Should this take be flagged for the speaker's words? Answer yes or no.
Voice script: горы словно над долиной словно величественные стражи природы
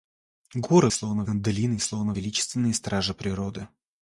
no